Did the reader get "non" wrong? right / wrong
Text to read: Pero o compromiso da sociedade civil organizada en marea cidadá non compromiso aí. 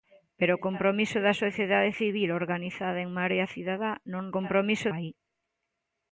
right